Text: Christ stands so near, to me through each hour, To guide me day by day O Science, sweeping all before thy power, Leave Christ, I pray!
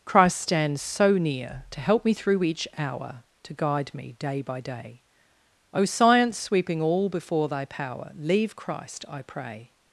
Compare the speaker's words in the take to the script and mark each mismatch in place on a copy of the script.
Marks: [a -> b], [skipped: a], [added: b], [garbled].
Christ stands so near, to [added: help] me through each hour, To guide me day by day O Science, sweeping all before thy power, Leave Christ, I pray!